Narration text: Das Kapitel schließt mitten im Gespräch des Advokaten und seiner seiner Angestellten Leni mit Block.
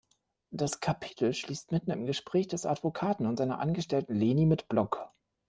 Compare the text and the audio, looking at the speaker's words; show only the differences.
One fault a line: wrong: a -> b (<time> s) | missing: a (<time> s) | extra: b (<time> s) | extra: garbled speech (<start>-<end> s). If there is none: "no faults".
missing: seiner (3.6 s)